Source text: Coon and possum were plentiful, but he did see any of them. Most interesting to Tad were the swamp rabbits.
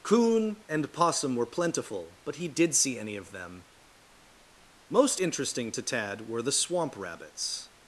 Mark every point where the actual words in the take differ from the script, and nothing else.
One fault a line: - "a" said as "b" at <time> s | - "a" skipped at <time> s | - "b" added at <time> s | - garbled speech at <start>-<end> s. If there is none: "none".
none